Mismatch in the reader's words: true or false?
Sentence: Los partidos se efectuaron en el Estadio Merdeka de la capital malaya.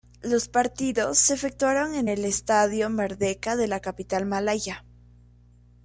false